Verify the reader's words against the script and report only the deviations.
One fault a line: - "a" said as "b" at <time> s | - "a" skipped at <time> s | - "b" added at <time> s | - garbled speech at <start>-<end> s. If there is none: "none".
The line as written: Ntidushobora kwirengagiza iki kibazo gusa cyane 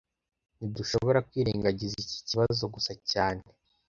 none